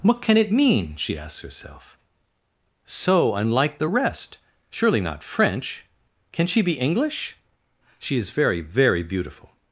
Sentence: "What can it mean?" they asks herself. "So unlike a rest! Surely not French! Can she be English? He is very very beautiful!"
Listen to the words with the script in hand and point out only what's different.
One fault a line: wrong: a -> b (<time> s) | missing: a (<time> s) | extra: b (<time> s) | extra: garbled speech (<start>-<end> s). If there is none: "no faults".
wrong: they -> she (0.9 s)
wrong: a -> the (3.8 s)
wrong: He -> She (8.0 s)